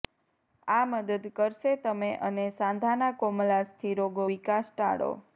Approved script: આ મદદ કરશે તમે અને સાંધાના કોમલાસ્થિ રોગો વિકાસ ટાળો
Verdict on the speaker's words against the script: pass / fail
pass